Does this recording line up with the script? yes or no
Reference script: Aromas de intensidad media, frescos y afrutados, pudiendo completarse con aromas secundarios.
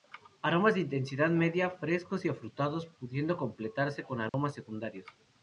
yes